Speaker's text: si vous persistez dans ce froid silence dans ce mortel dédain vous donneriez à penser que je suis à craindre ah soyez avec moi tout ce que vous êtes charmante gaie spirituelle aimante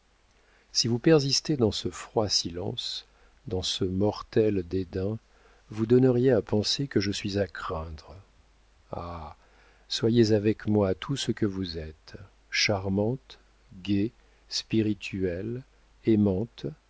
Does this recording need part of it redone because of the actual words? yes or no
no